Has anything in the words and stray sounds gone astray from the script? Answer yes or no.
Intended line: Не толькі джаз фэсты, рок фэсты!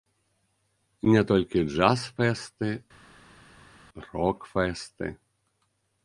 no